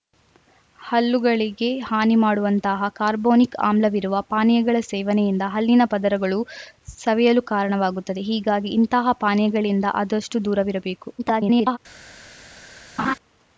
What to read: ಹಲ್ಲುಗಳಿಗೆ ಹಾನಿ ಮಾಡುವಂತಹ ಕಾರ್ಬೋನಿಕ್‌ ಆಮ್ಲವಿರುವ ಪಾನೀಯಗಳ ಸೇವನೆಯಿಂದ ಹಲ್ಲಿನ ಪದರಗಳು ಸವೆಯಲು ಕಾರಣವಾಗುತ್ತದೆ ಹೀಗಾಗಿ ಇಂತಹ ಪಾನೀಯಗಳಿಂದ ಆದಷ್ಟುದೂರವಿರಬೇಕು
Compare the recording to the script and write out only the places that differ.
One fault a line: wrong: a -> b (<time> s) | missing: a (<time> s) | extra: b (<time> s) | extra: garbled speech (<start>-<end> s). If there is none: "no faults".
extra: garbled speech (11.2-11.8 s)